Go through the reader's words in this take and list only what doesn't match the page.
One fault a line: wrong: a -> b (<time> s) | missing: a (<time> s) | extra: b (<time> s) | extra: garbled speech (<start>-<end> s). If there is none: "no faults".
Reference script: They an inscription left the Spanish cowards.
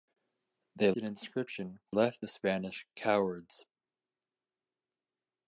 no faults